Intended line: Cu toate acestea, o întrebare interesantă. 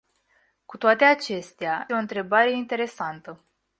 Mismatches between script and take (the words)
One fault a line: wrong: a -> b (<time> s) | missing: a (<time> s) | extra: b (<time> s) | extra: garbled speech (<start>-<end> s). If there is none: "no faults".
no faults